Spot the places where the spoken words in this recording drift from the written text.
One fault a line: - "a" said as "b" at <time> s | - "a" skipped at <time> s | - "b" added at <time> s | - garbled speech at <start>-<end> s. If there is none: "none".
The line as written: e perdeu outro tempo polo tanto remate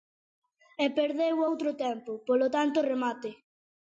none